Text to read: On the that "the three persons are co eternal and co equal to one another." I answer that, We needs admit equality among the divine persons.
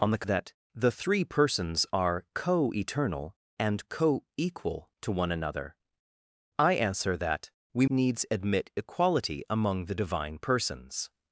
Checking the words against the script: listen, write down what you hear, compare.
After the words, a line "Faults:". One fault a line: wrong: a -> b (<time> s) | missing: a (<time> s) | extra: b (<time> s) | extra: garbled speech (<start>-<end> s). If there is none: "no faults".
On the that "the three persons are co eternal and co equal to one another." I answer that, We needs admit equality among the divine persons.
Faults:
no faults